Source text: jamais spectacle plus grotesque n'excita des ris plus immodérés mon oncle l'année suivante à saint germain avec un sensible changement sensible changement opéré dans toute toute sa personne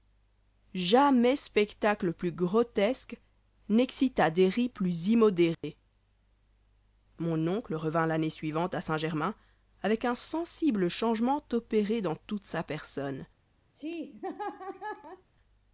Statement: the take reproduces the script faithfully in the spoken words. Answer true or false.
false